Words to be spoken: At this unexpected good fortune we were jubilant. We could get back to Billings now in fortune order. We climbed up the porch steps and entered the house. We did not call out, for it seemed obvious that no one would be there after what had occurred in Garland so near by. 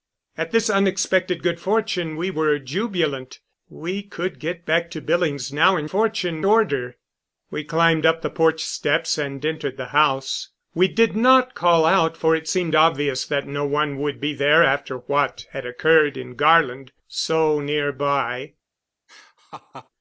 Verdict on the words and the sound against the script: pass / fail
fail